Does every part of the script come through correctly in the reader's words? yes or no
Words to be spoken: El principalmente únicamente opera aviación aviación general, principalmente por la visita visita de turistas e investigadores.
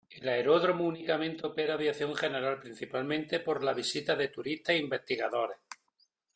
no